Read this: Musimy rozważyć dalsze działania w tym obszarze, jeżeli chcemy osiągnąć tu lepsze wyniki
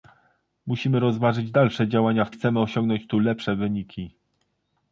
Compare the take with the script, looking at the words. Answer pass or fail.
fail